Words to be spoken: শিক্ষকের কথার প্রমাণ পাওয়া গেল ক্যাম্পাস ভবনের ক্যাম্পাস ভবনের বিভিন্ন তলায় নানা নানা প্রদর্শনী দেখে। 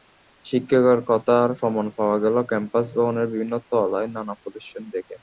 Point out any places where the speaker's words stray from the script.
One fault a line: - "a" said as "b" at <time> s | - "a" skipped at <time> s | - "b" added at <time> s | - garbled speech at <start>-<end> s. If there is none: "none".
- "ক্যাম্পাস ভবনের" skipped at 3.3 s
- "নানা" skipped at 4.3 s